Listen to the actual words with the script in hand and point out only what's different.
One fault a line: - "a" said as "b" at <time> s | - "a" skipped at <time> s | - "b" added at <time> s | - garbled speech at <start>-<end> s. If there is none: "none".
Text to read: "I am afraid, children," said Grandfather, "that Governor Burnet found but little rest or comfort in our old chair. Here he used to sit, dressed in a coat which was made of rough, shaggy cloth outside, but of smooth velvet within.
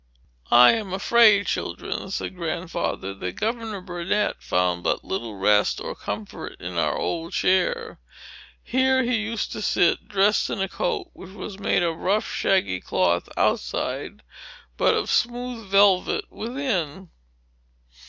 none